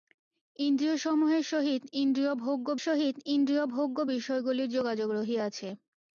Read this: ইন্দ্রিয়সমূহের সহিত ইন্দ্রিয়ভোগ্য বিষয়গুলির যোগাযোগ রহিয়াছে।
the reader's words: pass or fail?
fail